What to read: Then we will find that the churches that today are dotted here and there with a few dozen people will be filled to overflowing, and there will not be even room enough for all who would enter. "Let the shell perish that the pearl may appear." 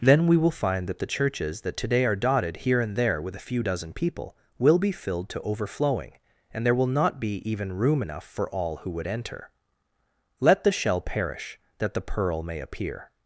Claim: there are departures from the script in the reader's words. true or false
false